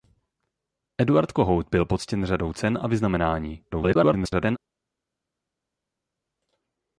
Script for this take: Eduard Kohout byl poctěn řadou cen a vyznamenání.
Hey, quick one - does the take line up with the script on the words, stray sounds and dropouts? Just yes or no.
no